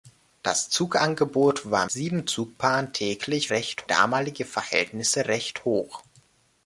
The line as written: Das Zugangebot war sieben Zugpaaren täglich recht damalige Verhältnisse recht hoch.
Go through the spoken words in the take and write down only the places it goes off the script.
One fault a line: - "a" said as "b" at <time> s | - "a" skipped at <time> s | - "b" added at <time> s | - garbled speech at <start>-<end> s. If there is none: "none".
none